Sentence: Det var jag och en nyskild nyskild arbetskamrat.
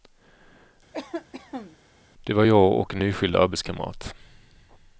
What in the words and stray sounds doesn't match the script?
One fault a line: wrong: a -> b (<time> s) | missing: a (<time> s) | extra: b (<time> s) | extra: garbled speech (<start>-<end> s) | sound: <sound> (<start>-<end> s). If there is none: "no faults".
sound: cough (0.9-1.8 s)
missing: nyskild (3.4 s)